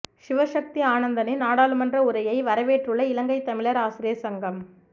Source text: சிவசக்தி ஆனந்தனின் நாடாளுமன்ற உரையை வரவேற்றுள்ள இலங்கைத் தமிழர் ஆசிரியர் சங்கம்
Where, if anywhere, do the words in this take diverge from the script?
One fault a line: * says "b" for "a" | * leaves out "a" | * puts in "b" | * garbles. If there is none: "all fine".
all fine